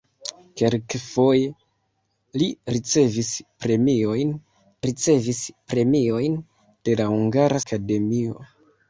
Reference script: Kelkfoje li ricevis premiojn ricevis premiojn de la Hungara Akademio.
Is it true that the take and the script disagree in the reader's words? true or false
false